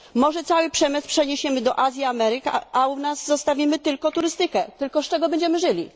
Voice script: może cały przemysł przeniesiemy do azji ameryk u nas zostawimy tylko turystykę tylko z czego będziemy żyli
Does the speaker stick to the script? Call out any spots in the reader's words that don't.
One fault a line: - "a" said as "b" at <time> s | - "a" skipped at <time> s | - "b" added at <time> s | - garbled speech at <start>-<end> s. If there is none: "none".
- "a" added at 2.7 s